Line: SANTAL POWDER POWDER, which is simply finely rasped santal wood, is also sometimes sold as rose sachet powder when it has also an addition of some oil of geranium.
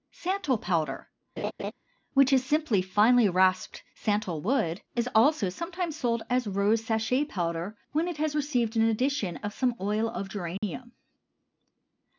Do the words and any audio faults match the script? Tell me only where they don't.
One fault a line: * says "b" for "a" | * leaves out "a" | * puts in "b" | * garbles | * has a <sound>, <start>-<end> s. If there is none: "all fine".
* leaves out "POWDER"
* has a laugh, 1.4-1.7 s
* says "received" for "also"
* has a dropout, 10.6-10.6 s